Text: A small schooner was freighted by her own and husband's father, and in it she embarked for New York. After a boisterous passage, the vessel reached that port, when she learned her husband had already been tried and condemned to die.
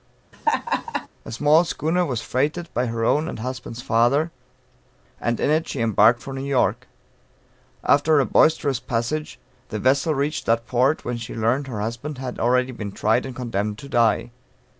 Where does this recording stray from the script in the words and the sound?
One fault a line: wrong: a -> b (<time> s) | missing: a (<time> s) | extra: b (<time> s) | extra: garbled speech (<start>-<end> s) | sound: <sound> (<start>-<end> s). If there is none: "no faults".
sound: laugh (0.3-1.1 s)